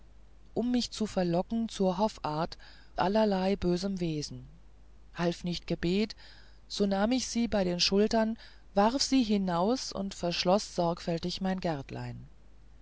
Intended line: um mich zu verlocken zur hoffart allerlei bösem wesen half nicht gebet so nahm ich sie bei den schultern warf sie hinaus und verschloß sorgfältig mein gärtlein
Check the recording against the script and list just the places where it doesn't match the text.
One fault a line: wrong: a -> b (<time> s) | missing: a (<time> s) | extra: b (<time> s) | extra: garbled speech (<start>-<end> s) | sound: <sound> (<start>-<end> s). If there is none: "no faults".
no faults